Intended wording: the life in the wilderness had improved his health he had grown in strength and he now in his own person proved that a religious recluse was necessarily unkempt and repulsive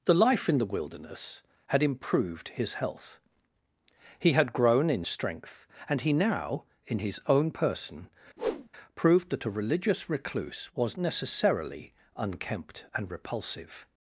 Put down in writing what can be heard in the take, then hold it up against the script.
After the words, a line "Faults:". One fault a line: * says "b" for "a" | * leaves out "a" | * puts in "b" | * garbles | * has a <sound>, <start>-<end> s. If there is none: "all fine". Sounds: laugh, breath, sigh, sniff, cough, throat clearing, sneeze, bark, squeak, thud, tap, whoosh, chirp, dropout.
the life in the wilderness had improved his health he had grown in strength and he now in his own person proved that a religious recluse was necessarily unkempt and repulsive
Faults:
* has a whoosh, 8.4-8.7 s